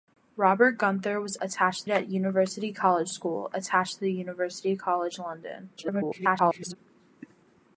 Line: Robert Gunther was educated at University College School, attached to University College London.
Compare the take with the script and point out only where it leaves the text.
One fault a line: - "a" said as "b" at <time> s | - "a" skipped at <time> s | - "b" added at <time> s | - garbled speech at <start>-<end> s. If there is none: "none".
- "educated" said as "attached" at 1.4 s
- garbled speech at 5.8-6.8 s